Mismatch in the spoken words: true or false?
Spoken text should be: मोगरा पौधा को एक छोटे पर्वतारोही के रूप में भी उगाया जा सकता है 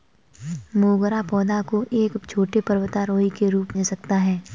true